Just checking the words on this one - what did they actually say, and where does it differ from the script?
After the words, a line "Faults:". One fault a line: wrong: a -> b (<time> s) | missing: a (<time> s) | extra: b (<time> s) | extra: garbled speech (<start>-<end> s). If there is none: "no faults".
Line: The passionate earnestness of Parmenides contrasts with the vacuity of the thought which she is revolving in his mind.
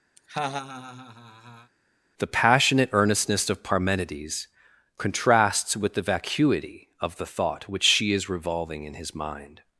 The passionate earnestness of Parmenides contrasts with the vacuity of the thought which she is revolving in his mind.
Faults:
no faults